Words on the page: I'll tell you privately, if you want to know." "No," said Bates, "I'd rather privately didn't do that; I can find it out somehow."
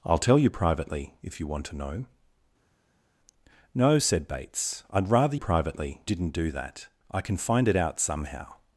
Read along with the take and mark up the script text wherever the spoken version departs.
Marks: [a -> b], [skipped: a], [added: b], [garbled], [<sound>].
I'll tell you privately, if you want to know." "No," said Bates, "I'd rather privately didn't do that; I can find it out somehow."